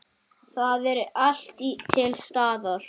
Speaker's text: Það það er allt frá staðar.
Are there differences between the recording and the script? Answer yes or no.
yes